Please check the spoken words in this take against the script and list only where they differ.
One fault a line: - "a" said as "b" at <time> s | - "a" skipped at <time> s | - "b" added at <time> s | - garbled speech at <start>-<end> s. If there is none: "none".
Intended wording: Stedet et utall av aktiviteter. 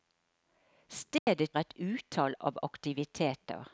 none